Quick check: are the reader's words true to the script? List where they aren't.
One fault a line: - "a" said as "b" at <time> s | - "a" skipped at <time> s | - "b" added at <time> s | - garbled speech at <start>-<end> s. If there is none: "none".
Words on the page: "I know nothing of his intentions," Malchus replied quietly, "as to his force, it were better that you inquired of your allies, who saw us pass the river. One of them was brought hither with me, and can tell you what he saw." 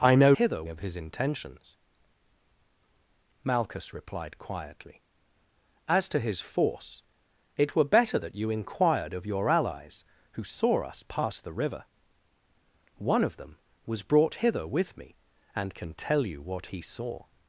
- "nothing" said as "hither" at 0.3 s